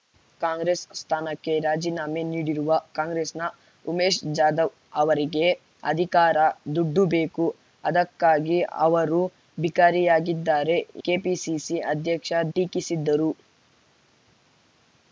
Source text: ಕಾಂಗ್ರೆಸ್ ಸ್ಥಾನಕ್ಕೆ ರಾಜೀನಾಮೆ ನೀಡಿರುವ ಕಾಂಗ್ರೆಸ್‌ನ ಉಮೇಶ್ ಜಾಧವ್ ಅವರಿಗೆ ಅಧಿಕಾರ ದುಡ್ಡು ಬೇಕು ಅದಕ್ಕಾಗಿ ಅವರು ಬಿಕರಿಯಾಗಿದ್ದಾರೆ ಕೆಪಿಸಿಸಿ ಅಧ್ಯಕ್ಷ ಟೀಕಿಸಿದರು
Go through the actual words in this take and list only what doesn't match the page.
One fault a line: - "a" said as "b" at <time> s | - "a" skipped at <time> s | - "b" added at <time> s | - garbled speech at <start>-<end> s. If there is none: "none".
none